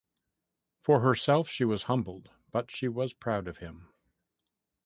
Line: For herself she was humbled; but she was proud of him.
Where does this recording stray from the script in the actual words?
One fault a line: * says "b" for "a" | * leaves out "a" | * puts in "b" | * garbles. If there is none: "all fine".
all fine